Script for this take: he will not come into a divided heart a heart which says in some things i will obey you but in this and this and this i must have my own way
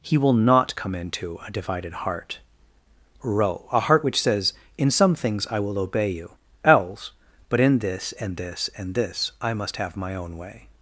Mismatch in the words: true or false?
true